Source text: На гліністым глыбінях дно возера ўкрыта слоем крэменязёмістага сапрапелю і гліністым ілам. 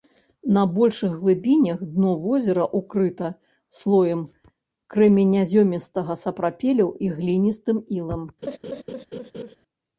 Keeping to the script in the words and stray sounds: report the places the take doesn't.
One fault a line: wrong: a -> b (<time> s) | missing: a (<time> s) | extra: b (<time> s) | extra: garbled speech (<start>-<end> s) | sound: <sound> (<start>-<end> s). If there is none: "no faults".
wrong: гліністым -> большых (0.8 s)
sound: laugh (8.4-9.6 s)